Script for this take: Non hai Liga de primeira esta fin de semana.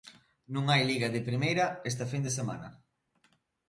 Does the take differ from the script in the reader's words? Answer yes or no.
no